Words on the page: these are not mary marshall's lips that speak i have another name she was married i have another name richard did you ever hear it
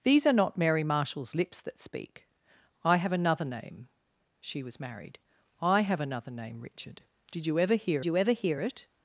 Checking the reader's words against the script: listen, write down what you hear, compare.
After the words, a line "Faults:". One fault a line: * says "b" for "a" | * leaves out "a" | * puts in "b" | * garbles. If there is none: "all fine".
these are not mary marshall's lips that speak i have another name she was married i have another name richard did you ever hear you ever hear it
Faults:
* puts in "you ever hear"